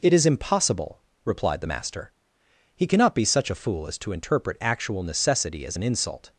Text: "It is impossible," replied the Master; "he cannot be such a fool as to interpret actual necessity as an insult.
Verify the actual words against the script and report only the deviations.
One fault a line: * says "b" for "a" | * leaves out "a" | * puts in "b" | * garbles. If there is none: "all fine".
all fine